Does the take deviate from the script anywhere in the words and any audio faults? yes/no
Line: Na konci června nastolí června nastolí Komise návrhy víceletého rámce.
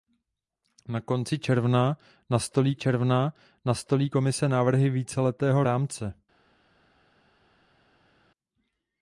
no